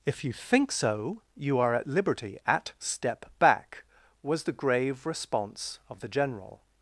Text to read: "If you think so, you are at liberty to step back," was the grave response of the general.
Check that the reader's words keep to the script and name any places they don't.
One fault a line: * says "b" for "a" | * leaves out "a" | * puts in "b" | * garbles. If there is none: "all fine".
* says "at" for "to"